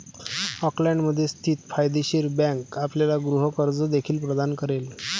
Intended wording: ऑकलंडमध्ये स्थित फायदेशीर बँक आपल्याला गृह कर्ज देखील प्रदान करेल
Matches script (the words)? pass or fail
pass